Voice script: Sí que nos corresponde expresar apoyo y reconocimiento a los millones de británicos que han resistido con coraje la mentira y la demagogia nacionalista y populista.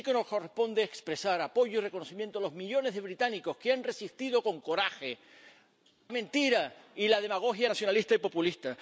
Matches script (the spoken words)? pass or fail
fail